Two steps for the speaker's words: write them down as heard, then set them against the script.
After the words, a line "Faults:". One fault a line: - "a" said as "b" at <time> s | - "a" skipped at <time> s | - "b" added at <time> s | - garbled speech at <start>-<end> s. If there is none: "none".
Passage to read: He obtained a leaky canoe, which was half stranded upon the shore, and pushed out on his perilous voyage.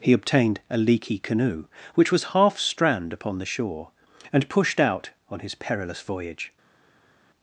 He obtained a leaky canoe, which was half strand upon the shore, and pushed out on his perilous voyage.
Faults:
- "stranded" said as "strand" at 2.6 s